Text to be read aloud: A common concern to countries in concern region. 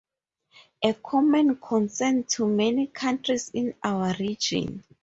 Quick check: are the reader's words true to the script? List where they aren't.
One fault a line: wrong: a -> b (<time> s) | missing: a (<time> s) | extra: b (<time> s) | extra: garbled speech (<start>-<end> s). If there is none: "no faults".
extra: many (2.5 s)
wrong: concern -> our (3.8 s)